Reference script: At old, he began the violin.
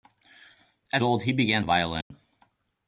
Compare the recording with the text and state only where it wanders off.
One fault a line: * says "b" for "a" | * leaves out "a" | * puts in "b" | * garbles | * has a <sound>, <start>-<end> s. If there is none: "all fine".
* has a dropout, 2.0-2.1 s